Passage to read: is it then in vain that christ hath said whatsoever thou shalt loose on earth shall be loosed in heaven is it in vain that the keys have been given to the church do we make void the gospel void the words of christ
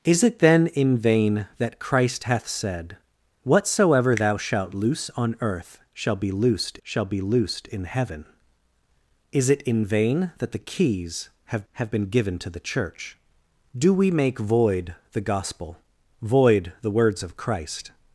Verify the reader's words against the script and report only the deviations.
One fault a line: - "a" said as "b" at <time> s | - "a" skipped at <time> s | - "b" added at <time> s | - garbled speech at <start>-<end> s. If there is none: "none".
- "shall be loosed" added at 6.8 s
- "have" added at 11.7 s